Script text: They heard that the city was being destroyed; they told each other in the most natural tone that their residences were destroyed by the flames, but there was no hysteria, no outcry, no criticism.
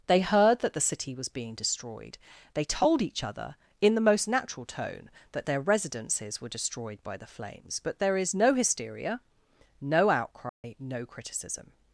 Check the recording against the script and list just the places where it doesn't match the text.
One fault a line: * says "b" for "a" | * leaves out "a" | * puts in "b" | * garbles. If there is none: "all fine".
* says "is" for "was"